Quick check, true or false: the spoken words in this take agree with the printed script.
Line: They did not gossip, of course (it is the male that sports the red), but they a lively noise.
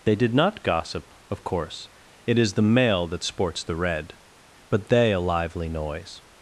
true